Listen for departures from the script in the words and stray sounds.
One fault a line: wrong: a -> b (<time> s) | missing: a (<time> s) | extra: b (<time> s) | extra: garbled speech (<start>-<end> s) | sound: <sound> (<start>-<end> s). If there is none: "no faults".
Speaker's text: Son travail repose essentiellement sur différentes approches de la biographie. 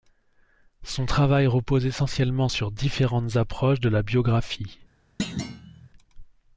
sound: thud (5.2-5.9 s)